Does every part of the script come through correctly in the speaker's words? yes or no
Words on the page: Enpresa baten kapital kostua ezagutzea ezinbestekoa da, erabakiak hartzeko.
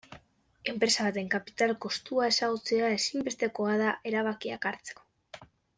yes